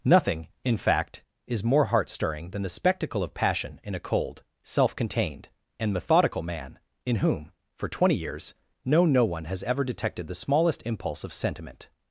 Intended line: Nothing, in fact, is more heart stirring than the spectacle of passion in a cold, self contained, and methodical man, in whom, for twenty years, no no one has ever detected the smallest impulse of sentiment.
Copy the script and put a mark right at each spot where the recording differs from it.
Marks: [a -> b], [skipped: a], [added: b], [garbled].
Nothing, in fact, is more heart stirring than the spectacle of passion in a cold, self contained, and methodical man, in whom, for twenty years, no no one has ever detected the smallest impulse of sentiment.